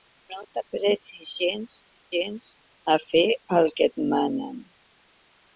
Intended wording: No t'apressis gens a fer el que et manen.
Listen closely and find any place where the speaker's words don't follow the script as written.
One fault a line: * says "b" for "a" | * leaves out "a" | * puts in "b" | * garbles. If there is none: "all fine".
* puts in "gens"